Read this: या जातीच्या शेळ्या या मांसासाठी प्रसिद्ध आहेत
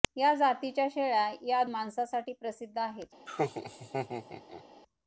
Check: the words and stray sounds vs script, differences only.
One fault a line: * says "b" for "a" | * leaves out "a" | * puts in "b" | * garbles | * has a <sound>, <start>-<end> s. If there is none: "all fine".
* has a laugh, 3.3-4.6 s